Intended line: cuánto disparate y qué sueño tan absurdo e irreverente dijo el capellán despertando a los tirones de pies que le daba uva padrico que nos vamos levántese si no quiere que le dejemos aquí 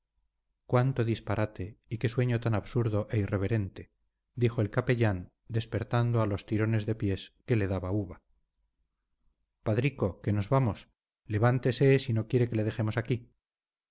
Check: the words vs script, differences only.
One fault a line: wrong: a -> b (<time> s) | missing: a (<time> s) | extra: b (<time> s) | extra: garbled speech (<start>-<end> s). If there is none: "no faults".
no faults